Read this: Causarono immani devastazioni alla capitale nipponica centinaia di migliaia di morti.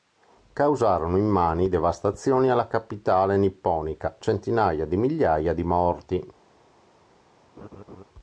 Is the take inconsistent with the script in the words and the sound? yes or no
yes